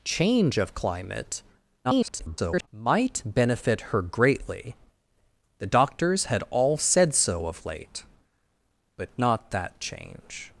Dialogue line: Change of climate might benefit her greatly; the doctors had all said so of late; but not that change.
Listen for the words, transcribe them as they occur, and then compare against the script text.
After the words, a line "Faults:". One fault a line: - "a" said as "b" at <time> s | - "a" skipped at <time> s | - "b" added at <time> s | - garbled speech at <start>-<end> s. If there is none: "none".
Change of climate [garbled] might benefit her greatly; the doctors had all said so of late; but not that change.
Faults:
- garbled speech at 1.8-2.7 s